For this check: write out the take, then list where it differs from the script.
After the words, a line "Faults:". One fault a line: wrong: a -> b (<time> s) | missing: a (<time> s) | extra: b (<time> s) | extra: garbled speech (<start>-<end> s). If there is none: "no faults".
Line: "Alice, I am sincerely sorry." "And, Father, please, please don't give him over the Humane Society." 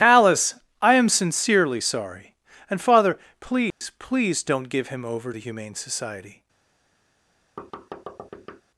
"Alice, I am sincerely sorry." "And, Father, please, please don't give him over the Humane Society."
Faults:
no faults